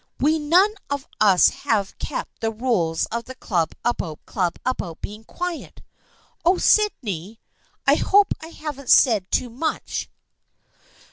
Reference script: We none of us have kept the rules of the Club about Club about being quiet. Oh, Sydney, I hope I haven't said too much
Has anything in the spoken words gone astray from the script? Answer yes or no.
no